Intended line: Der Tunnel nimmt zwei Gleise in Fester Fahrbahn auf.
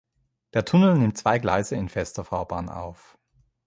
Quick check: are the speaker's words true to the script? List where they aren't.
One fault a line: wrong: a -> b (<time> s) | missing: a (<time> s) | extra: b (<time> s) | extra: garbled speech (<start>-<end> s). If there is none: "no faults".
no faults